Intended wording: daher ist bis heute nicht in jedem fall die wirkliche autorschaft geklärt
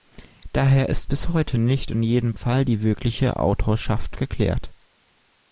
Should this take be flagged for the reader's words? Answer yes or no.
no